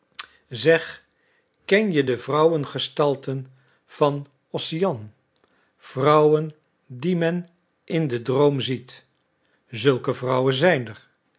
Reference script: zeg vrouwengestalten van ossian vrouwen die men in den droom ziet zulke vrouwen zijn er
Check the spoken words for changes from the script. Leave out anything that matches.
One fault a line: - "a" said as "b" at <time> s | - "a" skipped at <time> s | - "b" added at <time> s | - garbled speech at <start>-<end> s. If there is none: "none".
- "ken je de" added at 1.6 s